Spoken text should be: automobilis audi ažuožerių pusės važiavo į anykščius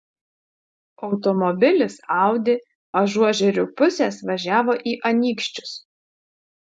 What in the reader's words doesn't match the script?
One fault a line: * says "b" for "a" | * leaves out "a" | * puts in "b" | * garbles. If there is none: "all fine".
all fine